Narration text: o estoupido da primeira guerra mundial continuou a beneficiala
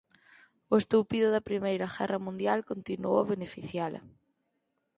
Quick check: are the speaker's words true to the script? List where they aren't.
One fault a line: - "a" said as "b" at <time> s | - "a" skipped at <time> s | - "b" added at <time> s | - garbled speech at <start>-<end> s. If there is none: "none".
none